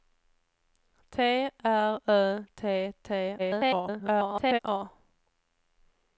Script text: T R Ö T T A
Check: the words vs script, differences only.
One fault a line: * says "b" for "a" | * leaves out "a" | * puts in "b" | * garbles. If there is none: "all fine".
* garbles